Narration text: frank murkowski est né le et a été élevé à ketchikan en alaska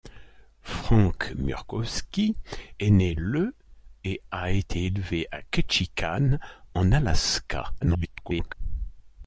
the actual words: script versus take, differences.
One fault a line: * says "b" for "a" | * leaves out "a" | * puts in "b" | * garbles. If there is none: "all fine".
* garbles